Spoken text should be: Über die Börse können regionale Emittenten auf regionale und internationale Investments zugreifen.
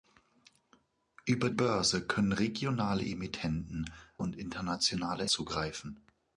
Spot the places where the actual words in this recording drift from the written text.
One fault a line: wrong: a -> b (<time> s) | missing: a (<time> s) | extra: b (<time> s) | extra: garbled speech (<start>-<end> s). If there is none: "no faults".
missing: die (1.5 s)
missing: auf regionale (3.9 s)
missing: Investments (5.3 s)